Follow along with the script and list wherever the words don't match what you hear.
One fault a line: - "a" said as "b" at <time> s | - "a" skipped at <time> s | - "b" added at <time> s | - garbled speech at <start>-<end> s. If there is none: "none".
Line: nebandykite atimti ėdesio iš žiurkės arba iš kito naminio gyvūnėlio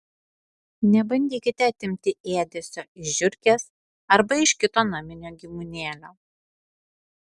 none